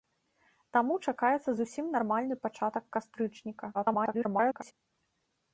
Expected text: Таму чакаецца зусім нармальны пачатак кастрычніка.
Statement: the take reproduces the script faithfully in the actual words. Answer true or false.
false